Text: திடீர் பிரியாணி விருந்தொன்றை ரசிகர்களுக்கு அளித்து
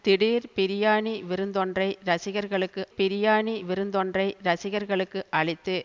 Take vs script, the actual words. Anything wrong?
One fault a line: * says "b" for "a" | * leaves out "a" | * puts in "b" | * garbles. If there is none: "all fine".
* puts in "பிரியாணி விருந்தொன்றை ரசிகர்களுக்கு"